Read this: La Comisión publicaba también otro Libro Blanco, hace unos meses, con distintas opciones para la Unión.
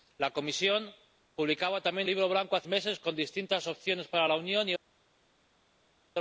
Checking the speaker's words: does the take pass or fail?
fail